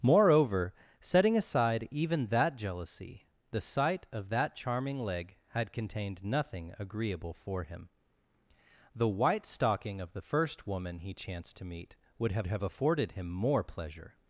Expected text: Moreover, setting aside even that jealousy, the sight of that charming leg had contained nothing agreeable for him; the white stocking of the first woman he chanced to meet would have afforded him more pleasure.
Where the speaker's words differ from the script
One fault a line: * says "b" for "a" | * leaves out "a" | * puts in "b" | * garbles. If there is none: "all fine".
* puts in "have"